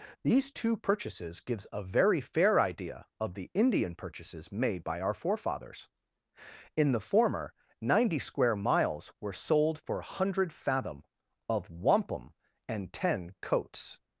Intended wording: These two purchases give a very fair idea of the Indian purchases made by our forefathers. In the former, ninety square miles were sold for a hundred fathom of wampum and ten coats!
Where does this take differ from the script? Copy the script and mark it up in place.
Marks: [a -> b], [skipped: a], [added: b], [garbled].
These two purchases [give -> gives] a very fair idea of the Indian purchases made by our forefathers. In the former, ninety square miles were sold for a hundred fathom of wampum and ten coats!